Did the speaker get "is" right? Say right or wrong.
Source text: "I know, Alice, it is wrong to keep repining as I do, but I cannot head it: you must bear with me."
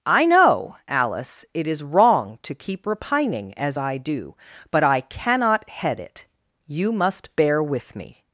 right